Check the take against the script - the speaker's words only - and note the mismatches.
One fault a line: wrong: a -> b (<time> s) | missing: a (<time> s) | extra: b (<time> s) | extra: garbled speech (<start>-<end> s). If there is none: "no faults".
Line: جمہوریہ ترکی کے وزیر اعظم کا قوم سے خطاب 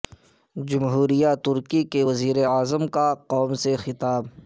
no faults